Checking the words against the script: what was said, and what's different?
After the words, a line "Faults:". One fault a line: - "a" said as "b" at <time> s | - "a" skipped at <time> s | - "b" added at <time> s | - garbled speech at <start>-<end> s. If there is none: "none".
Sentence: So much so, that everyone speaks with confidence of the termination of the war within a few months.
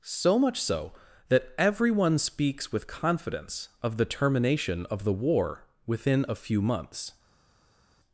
So much so, that everyone speaks with confidence of the termination of the war within a few months.
Faults:
none